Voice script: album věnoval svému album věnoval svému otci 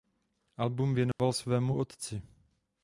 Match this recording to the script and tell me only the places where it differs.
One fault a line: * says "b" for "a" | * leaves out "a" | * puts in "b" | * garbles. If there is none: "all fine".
* leaves out "album věnoval svému"